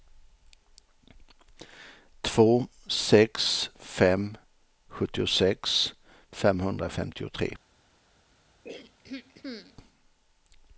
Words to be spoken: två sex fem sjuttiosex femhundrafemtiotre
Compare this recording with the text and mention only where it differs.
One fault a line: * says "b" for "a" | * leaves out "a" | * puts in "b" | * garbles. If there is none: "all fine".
all fine